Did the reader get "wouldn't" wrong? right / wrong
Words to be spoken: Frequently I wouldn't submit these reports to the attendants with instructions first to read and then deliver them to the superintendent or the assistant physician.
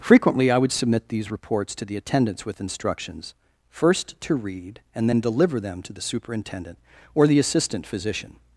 wrong